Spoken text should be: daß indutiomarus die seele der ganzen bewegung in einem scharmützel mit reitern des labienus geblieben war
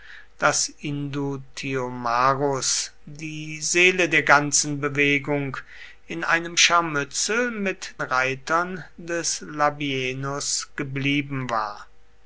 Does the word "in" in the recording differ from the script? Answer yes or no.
no